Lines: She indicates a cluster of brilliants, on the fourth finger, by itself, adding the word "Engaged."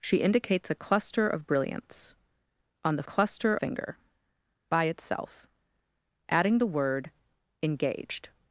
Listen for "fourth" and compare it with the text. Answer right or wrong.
wrong